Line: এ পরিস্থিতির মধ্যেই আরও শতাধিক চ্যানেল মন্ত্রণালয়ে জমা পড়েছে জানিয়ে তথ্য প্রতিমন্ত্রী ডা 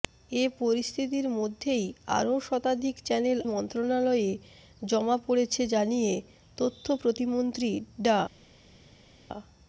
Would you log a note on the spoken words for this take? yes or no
no